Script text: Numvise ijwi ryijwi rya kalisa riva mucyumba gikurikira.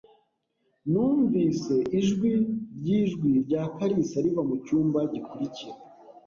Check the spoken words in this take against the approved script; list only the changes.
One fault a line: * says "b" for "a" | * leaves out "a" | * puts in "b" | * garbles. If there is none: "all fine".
all fine